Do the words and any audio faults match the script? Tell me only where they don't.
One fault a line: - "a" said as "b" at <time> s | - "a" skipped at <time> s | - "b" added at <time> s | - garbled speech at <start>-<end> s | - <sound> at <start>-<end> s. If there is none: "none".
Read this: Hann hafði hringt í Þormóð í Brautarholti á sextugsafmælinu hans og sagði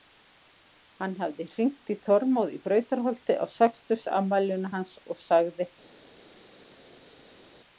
none